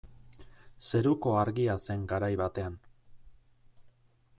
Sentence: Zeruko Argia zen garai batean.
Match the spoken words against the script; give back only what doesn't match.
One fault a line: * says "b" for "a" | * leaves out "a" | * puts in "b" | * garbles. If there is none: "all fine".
all fine